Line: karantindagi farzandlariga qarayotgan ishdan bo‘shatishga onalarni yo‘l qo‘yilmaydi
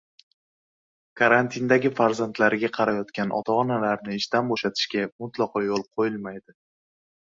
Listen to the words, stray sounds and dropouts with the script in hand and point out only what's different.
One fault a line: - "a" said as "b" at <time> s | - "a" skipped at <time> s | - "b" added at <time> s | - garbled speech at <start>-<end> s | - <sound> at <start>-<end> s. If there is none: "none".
- "ota onalarni" added at 3.4 s
- "onalarni" said as "mutlaqo" at 5.3 s